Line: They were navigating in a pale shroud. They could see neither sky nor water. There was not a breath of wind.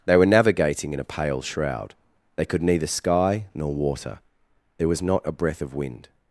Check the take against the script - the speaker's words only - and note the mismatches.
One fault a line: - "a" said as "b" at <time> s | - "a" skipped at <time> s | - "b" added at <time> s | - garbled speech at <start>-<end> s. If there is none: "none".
- "see" skipped at 2.6 s